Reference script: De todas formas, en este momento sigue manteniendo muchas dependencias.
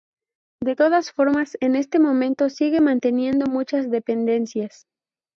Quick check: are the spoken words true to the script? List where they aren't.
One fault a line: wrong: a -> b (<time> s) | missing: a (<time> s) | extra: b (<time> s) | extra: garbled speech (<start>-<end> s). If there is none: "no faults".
no faults